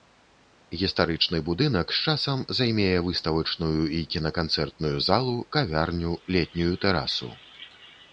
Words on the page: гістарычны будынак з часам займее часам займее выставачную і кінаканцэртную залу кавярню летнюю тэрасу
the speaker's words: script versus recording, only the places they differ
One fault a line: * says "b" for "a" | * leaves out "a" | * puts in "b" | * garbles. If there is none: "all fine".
* leaves out "часам займее"